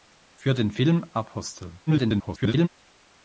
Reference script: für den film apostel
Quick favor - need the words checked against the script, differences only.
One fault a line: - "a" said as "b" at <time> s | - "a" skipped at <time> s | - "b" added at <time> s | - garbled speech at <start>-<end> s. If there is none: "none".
- garbled speech at 1.9-2.7 s